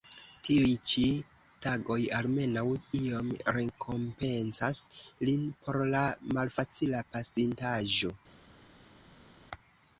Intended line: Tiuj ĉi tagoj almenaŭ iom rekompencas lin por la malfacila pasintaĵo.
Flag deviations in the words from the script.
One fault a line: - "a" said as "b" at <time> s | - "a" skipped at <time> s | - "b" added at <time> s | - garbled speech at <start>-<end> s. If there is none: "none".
none